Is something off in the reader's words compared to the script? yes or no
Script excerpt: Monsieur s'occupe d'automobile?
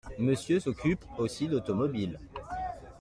yes